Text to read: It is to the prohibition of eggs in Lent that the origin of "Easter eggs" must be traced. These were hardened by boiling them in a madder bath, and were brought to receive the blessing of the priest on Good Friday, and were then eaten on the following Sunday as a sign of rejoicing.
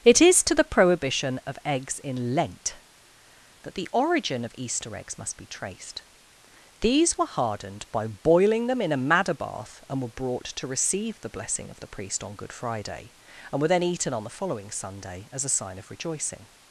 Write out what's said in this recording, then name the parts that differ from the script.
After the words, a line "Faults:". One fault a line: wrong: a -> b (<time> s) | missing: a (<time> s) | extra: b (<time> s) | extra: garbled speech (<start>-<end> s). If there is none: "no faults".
It is to the prohibition of eggs in Lent that the origin of "Easter eggs" must be traced. These were hardened by boiling them in a madder bath, and were brought to receive the blessing of the priest on Good Friday, and were then eaten on the following Sunday as a sign of rejoicing.
Faults:
no faults